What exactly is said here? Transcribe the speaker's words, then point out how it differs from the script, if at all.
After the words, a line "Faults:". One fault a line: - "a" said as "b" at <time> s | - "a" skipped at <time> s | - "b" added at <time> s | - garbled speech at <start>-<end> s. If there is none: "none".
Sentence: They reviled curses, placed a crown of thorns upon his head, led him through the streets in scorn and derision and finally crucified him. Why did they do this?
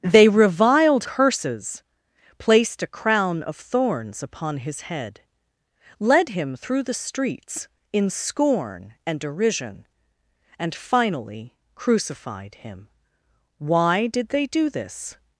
They reviled curses, placed a crown of thorns upon his head, led him through the streets in scorn and derision and finally crucified him. Why did they do this?
Faults:
none